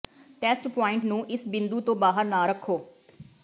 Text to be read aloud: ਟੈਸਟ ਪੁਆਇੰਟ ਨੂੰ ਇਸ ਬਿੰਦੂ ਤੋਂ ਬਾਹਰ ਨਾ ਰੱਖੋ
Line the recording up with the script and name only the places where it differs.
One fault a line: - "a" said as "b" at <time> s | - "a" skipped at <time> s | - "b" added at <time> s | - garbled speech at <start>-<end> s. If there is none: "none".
none